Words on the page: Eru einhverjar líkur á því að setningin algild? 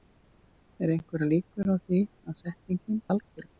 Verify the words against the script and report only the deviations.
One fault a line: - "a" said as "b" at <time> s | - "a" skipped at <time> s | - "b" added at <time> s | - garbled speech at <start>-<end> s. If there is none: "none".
none